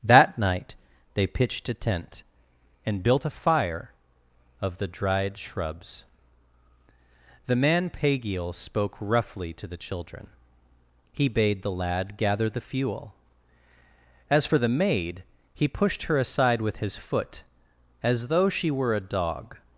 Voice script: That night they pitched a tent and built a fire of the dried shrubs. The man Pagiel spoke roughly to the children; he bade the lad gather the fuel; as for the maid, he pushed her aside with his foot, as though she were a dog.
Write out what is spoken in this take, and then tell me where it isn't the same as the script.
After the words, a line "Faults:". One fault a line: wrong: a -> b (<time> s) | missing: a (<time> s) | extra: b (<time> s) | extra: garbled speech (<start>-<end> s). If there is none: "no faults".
That night they pitched a tent and built a fire of the dried shrubs. The man Pagiel spoke roughly to the children; he bade the lad gather the fuel; as for the maid, he pushed her aside with his foot, as though she were a dog.
Faults:
no faults